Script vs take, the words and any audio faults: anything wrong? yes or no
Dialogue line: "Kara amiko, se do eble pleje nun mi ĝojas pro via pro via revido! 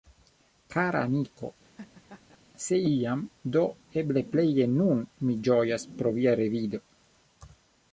yes